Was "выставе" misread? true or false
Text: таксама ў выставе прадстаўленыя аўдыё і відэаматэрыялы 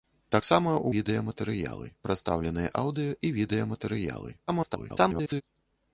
true